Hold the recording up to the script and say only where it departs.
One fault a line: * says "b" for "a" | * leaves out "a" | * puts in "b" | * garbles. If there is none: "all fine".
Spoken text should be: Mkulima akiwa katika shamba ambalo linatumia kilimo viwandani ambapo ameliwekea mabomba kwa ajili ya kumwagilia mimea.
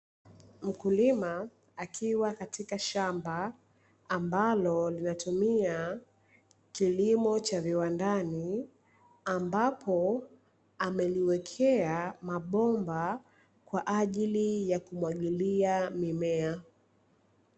* puts in "cha"